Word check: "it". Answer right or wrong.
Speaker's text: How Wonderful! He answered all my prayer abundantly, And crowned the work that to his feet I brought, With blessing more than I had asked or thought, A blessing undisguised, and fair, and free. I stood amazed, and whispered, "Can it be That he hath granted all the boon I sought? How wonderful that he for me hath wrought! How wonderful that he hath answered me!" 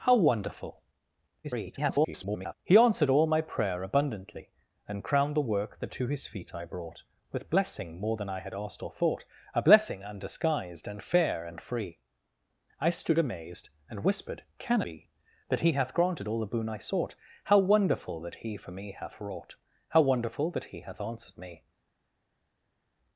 wrong